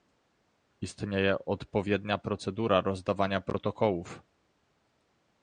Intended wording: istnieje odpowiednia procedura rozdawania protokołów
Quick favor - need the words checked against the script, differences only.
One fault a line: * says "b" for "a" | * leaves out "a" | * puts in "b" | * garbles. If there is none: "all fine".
all fine